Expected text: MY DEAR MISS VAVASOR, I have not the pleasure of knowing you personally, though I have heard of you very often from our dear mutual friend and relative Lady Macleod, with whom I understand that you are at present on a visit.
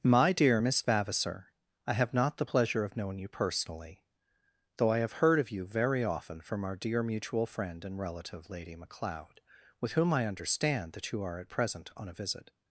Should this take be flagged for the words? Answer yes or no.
no